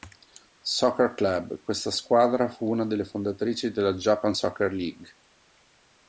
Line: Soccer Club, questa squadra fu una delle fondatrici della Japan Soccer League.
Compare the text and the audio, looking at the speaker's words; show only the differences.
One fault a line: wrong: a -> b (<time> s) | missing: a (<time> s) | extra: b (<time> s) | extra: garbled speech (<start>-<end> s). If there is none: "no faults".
no faults